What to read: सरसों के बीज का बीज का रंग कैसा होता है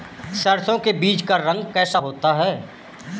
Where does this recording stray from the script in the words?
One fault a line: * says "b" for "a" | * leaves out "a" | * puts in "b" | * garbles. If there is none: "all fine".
* leaves out "बीज का"